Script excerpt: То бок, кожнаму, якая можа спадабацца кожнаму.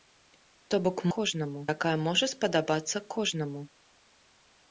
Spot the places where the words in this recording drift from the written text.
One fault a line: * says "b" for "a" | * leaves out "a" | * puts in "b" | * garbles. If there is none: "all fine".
all fine